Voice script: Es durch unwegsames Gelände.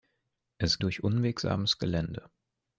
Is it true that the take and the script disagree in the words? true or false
false